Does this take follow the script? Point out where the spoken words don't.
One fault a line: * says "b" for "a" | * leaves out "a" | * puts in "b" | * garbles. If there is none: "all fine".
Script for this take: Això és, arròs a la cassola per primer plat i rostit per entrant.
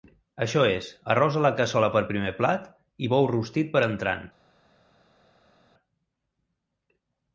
* puts in "bou"